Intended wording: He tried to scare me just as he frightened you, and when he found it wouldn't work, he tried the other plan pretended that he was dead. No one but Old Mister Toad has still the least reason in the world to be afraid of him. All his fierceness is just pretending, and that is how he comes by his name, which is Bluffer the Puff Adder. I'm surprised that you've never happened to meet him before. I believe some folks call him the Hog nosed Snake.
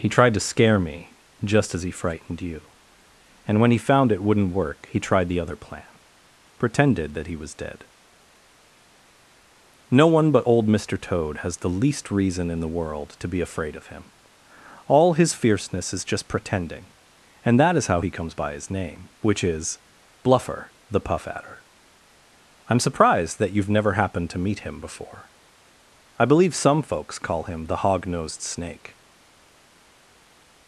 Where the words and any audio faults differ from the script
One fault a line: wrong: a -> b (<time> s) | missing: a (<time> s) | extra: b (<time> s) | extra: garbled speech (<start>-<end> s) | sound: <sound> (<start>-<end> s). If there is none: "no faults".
missing: still (11.6 s)